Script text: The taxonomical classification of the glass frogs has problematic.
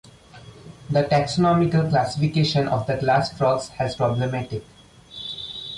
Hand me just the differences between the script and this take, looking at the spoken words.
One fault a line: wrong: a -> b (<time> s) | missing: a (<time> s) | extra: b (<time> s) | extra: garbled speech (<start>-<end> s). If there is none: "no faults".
no faults